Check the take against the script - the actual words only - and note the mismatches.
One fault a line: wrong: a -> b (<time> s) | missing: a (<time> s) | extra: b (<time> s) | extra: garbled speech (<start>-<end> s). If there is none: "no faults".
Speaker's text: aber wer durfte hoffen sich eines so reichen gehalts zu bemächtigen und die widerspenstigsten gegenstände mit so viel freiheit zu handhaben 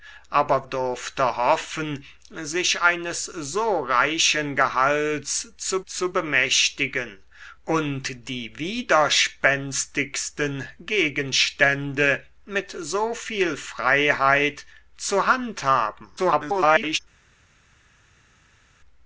missing: wer (0.7 s)
extra: zu (5.8 s)
extra: garbled speech (16.2-17.0 s)